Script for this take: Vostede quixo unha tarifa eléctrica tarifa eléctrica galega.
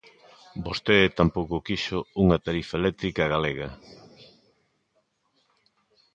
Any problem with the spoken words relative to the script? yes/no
yes